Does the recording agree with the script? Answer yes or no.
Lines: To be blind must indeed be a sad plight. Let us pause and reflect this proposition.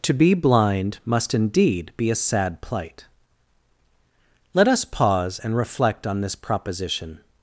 no